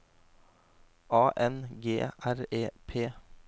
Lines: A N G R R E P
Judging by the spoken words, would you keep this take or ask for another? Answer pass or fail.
fail